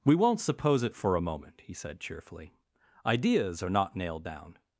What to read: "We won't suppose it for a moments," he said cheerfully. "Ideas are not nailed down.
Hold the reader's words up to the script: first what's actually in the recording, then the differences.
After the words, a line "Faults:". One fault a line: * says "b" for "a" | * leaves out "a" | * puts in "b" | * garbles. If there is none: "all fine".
"We won't suppose it for a moment," he said cheerfully. "Ideas are not nailed down.
Faults:
* says "moment" for "moments"